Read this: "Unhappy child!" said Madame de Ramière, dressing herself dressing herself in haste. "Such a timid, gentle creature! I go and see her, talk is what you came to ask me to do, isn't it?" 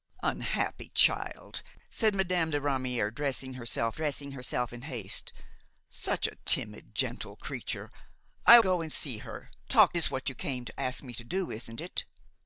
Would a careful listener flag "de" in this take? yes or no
no